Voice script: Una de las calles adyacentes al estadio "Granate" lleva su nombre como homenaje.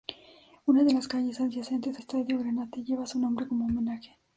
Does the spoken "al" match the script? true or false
false